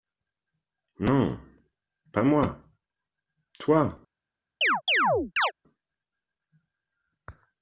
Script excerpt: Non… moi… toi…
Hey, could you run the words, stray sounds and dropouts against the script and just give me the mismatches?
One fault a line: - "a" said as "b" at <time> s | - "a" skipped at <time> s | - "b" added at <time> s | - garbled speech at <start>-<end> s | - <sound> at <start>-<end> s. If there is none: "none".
- "pas" added at 2.1 s
- chirp at 4.6-5.5 s